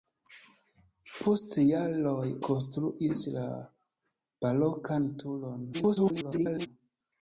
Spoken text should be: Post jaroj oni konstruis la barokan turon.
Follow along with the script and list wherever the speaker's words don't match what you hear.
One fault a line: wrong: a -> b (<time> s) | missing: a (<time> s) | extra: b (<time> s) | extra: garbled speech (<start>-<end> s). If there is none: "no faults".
missing: oni (2.2 s)
extra: garbled speech (5.7-6.7 s)